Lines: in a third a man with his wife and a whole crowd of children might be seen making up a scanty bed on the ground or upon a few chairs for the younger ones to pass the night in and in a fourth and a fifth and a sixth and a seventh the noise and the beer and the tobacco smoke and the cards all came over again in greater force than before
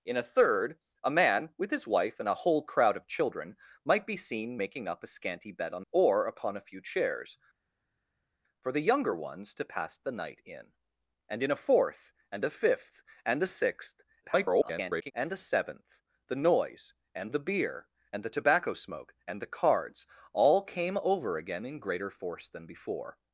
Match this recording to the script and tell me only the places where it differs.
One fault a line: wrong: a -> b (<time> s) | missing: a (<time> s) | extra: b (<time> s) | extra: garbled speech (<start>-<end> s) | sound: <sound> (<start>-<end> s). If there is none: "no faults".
missing: the ground (5.8 s)
extra: garbled speech (14.2-15.1 s)